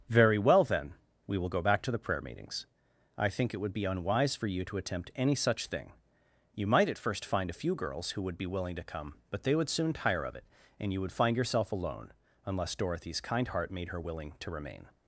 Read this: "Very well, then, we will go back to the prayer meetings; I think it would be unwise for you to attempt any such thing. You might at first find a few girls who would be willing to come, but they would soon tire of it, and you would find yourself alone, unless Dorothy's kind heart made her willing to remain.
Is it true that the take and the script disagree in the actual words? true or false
false